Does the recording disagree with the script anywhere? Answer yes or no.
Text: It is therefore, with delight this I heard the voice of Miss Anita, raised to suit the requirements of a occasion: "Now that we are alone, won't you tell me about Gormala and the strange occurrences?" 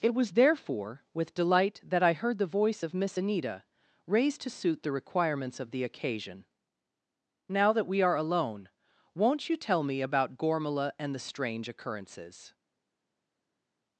yes